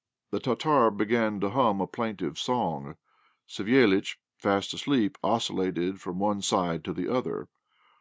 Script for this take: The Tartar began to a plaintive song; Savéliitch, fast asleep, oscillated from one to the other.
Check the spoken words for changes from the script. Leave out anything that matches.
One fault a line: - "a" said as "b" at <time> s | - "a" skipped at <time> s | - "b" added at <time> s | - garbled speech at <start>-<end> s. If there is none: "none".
- "hum" added at 1.5 s
- "side" added at 6.4 s